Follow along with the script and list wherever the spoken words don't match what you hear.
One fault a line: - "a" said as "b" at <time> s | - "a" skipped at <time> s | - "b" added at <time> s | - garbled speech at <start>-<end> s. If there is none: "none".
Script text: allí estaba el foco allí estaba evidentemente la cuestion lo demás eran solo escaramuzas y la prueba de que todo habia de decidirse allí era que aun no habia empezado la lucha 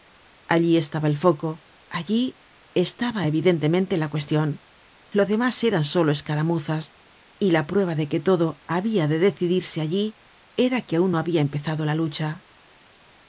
none